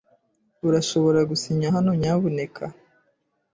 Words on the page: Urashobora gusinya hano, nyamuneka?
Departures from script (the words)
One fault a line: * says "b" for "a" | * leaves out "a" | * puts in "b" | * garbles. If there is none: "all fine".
all fine